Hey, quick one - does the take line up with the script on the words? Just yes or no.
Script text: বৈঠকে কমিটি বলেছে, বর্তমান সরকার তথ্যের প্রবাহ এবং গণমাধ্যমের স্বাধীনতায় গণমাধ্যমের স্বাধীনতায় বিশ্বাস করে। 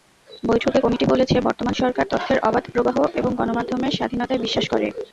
no